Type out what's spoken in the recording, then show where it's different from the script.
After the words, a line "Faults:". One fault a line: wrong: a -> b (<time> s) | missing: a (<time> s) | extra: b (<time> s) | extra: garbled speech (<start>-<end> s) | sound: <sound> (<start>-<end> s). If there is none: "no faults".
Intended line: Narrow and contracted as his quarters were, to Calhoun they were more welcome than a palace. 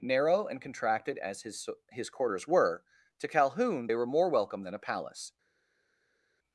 Narrow and contracted as his his quarters were, to Calhoun they were more welcome than a palace.
Faults:
extra: his (1.9 s)